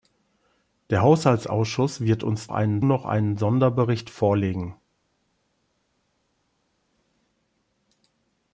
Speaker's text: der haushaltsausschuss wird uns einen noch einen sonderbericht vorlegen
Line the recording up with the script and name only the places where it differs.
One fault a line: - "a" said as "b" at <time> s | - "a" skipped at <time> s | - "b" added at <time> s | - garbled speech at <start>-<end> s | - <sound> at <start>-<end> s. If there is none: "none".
none